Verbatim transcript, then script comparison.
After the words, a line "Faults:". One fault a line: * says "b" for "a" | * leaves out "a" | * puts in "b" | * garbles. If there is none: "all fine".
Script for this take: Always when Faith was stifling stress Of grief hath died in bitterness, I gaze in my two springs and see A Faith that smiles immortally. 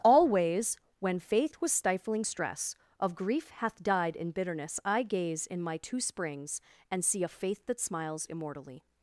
Always when Faith was stifling stress Of grief hath died in bitterness, I gaze in my two springs and see A Faith that smiles immortally.
Faults:
all fine